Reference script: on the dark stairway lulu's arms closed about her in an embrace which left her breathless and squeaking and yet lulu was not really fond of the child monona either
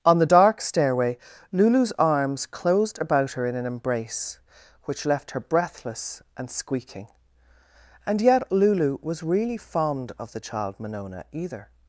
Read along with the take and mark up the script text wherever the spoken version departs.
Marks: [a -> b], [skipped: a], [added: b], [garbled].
on the dark stairway lulu's arms closed about her in an embrace which left her breathless and squeaking and yet lulu was [skipped: not] really fond of the child monona either